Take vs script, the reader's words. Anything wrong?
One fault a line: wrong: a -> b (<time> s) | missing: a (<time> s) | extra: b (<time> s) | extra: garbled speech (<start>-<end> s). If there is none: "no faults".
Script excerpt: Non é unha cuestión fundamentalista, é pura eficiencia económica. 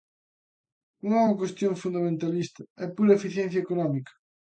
no faults